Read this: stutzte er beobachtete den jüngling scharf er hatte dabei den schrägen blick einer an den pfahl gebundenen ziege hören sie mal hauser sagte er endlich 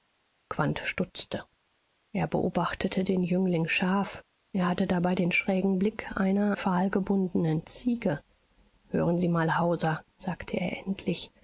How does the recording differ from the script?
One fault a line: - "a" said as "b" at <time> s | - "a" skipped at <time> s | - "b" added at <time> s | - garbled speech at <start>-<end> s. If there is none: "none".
- "an den" skipped at 6.5 s